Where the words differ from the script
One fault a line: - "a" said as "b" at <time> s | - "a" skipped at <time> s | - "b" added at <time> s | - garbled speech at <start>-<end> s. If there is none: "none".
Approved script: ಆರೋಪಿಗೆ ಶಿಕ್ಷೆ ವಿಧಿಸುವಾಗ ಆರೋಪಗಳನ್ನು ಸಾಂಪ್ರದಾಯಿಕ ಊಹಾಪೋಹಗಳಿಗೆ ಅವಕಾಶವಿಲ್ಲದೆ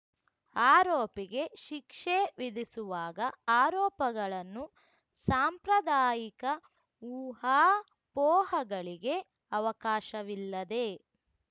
none